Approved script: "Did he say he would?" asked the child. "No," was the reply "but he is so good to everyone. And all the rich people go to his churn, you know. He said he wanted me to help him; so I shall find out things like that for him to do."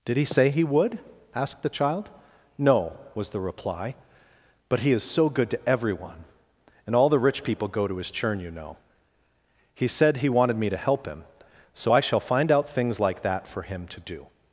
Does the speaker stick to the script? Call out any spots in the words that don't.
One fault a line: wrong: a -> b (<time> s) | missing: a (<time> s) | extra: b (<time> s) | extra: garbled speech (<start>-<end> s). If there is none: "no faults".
no faults